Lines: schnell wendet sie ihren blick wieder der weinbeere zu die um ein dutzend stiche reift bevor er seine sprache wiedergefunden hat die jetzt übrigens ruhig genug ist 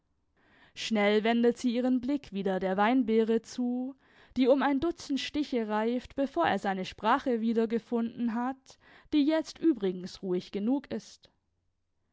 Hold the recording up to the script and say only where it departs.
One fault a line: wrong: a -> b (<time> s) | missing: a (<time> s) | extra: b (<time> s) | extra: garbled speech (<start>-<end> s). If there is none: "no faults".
no faults